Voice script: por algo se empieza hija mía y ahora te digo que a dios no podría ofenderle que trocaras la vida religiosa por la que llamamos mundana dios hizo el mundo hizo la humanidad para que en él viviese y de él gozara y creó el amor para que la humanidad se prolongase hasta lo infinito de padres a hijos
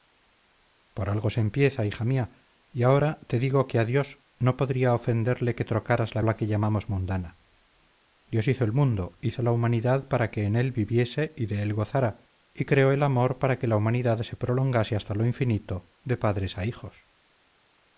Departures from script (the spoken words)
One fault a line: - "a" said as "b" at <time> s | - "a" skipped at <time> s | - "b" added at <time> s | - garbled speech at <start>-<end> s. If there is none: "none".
- "vida religiosa por" skipped at 6.2 s